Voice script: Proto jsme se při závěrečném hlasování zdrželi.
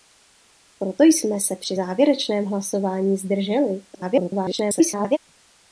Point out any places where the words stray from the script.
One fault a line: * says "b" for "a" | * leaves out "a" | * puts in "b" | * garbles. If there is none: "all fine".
* garbles